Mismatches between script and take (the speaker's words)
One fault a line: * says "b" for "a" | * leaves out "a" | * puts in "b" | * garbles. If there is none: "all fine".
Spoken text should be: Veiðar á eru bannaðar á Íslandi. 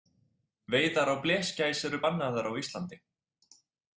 * puts in "blesgæs"